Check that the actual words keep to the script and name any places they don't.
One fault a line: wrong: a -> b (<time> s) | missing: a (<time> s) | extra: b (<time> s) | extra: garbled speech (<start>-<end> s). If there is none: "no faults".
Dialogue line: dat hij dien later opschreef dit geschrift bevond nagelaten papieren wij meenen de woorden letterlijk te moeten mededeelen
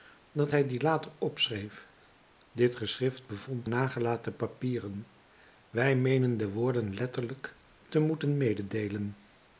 no faults